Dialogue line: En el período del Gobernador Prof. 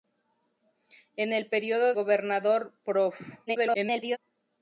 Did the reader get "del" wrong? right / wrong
wrong